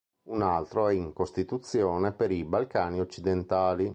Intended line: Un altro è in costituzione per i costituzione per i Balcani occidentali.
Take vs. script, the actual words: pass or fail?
fail